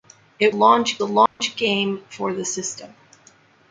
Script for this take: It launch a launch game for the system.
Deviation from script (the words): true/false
false